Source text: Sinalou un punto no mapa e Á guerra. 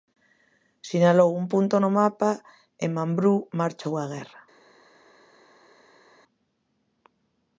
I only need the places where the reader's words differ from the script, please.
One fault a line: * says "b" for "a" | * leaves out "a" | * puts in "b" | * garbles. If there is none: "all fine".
* puts in "Mambrú marchou"